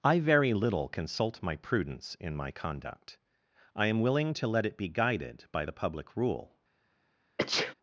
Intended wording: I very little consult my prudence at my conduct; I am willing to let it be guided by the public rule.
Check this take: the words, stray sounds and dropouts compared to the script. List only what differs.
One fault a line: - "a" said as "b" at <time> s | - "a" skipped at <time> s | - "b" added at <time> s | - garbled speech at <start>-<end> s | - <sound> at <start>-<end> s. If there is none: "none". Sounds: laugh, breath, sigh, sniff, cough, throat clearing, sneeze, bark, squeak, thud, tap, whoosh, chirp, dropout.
- "at" said as "in" at 2.2 s
- sneeze at 7.4-7.7 s